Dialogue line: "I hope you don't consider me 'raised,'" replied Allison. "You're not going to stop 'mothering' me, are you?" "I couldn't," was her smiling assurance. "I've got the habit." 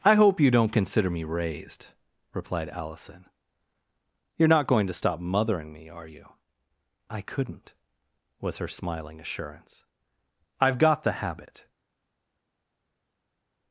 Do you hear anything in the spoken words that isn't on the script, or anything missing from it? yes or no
no